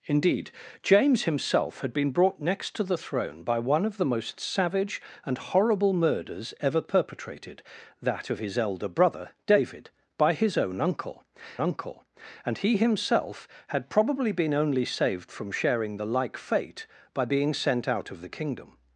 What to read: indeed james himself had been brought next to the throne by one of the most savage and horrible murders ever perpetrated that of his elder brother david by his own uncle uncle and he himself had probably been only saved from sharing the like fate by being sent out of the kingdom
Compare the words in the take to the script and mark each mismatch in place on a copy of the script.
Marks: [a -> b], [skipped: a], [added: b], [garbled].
indeed james himself had been brought next to the throne by one of the most savage and horrible murders ever perpetrated that of his elder brother david by his own uncle uncle and he himself had probably been only saved from sharing the like fate by being sent out of the kingdom